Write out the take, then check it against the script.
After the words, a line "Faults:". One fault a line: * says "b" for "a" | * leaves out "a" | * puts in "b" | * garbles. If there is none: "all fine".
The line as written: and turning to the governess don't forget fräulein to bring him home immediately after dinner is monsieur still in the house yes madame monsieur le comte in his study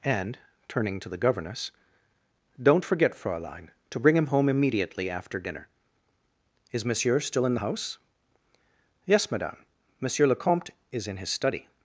and turning to the governess don't forget fräulein to bring him home immediately after dinner is monsieur still in the house yes madame monsieur le comte is in his study
Faults:
* puts in "is"